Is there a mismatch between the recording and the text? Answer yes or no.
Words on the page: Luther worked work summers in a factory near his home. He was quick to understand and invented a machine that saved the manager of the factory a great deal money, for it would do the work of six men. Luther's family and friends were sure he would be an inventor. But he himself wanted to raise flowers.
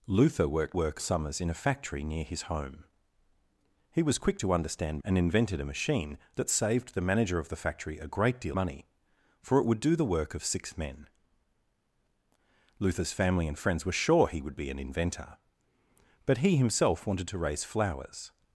no